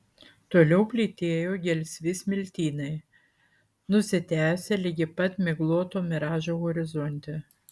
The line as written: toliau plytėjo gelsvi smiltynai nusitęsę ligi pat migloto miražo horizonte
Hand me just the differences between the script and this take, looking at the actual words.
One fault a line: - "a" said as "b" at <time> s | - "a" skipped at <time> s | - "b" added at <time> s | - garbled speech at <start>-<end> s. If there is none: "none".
none